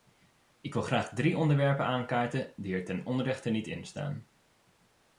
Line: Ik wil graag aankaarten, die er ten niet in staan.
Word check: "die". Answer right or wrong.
right